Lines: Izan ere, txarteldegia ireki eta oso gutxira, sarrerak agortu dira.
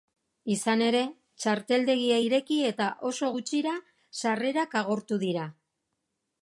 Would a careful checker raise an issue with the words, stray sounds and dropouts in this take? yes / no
no